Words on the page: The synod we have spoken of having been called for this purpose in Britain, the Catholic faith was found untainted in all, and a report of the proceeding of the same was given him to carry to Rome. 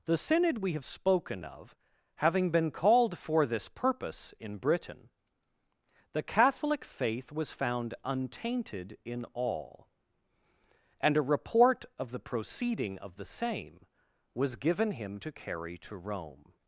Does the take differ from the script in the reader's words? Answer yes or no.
no